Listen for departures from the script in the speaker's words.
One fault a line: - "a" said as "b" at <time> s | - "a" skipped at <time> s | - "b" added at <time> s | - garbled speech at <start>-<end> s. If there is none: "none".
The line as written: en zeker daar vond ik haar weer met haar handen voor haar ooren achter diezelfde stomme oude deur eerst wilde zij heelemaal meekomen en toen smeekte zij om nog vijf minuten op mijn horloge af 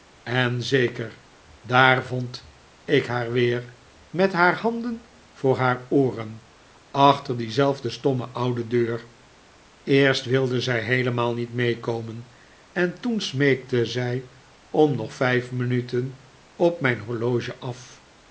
- "niet" added at 11.3 s